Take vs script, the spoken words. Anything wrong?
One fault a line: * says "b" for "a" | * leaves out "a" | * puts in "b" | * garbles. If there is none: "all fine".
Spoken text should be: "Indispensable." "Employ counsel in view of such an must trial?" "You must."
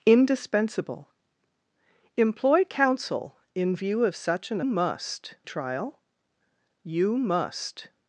all fine